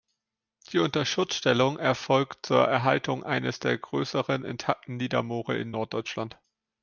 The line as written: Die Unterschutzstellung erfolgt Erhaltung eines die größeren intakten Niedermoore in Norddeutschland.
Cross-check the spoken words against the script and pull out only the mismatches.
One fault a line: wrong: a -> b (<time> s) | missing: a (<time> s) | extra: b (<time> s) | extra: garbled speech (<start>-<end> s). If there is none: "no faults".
extra: zur (2.5 s)
wrong: die -> der (3.6 s)